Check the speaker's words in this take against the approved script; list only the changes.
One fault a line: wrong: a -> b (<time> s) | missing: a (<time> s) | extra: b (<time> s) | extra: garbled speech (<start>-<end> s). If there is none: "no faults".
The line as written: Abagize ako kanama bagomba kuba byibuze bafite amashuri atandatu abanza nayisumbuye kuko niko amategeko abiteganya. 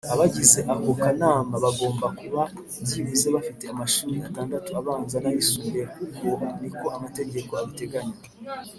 no faults